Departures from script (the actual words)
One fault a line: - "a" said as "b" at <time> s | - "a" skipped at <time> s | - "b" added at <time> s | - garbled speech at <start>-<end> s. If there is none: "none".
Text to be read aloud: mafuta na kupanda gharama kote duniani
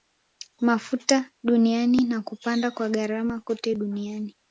- "duniani" added at 1.4 s
- "kwa" added at 2.7 s